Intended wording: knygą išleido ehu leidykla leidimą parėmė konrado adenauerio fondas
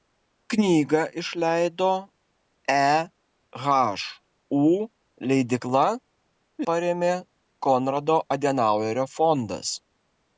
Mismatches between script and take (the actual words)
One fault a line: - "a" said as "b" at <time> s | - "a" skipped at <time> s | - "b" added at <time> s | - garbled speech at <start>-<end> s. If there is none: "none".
- "leidimą" skipped at 5.8 s